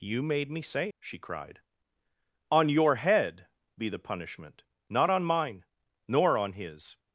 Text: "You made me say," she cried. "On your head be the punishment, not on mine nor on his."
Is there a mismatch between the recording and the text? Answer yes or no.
no